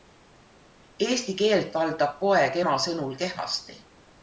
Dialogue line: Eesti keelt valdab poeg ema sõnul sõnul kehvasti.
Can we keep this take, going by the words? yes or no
no